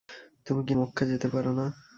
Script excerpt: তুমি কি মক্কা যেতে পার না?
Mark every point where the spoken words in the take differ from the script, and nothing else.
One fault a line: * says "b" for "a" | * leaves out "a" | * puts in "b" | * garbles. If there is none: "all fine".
all fine